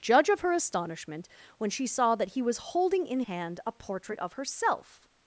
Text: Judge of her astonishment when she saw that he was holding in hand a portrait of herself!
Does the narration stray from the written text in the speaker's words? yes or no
no